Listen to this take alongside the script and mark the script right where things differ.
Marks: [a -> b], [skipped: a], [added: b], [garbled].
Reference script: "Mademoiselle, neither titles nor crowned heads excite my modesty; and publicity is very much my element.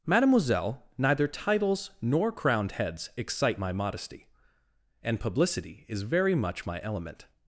"Mademoiselle, neither titles nor crowned heads excite my modesty; and publicity is very much my element.